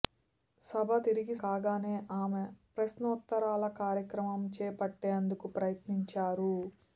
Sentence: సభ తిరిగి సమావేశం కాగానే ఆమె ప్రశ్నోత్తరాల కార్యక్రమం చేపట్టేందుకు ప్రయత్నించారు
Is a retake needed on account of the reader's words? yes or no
yes